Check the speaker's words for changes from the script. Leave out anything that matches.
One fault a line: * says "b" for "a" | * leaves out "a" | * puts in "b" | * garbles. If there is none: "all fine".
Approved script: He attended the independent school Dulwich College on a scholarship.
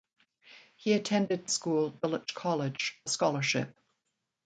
* leaves out "the independent"
* leaves out "on"